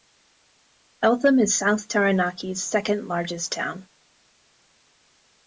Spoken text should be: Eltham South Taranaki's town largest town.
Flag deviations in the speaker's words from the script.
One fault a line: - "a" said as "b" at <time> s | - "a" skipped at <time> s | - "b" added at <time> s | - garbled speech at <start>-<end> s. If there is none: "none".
- "is" added at 1.4 s
- "town" said as "second" at 2.6 s